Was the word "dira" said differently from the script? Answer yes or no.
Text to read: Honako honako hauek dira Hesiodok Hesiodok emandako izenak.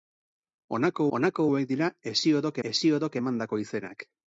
no